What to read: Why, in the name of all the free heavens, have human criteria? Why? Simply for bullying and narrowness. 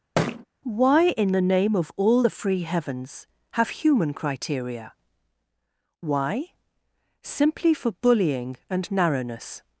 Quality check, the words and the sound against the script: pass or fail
fail